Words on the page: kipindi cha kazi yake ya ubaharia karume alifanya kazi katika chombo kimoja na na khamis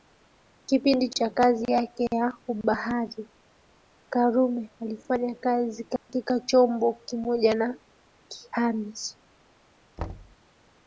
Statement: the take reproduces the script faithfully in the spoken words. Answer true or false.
false